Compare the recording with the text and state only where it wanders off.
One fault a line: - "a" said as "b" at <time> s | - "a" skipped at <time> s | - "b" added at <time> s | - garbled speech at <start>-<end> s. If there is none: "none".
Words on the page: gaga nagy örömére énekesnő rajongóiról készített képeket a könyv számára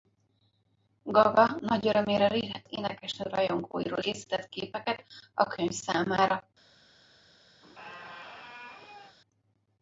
none